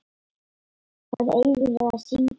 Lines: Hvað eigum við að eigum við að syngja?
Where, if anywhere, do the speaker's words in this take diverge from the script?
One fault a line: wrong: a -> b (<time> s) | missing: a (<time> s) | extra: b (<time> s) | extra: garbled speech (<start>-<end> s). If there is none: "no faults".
missing: eigum við að (2.0 s)